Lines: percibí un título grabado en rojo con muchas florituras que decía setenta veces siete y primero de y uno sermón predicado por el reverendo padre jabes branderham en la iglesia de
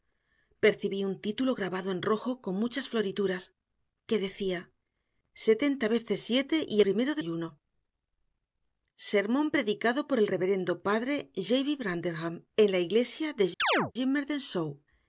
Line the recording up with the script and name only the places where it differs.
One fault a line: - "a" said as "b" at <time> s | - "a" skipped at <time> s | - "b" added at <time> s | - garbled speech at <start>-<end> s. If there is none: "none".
none